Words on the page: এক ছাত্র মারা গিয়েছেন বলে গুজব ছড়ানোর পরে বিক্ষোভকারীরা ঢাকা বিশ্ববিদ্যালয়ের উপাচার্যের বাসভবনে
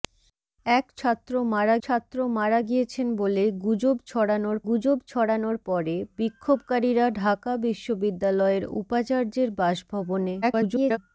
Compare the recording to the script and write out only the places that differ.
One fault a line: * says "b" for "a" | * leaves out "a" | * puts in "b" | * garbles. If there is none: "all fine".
* puts in "ছাত্র মারা"
* puts in "গুজব ছড়ানোর"
* garbles